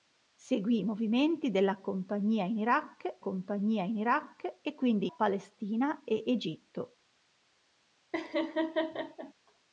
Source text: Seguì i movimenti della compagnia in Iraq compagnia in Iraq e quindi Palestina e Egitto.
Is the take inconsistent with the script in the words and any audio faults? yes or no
yes